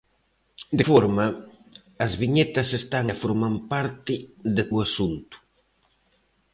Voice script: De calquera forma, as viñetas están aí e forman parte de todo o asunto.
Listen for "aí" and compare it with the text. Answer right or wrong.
wrong